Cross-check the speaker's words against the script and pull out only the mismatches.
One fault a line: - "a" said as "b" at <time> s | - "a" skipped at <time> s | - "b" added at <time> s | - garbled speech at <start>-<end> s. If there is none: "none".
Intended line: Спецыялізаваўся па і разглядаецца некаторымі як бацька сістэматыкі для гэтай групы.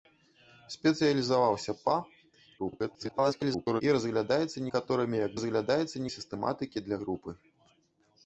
- garbled speech at 2.6-3.8 s
- "бацька" said as "разглядаецца" at 5.4 s
- "гэтай" skipped at 7.0 s